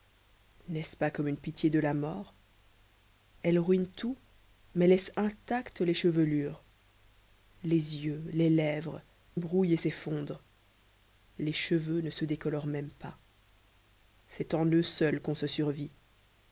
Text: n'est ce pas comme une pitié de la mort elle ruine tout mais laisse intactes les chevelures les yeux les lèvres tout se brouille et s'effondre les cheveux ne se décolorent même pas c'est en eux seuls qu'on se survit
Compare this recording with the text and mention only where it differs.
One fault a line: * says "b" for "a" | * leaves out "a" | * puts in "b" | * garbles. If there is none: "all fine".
* leaves out "tout se"